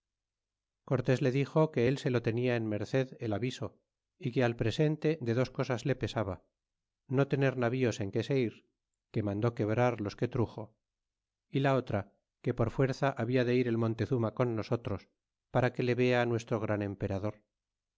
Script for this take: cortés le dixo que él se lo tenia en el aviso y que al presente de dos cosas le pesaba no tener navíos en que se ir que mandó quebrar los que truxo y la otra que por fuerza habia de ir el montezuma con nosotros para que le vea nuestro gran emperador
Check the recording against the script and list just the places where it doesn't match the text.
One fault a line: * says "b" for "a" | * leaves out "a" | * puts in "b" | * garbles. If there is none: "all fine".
* puts in "merced"